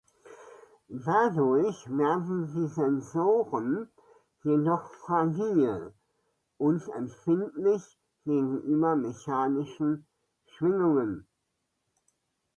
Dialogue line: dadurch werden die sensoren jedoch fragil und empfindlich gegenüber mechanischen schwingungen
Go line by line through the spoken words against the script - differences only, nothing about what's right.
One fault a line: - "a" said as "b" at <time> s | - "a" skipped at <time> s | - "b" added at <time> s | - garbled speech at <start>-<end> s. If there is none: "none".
none